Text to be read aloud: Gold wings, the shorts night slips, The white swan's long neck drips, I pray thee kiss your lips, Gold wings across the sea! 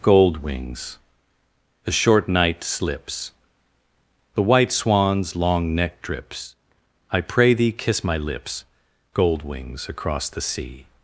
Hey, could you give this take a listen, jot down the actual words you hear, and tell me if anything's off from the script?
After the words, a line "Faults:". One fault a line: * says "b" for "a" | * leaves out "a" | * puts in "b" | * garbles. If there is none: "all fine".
Gold wings, the short night slips, The white swan's long neck drips, I pray thee kiss my lips, Gold wings across the sea!
Faults:
* says "short" for "shorts"
* says "my" for "your"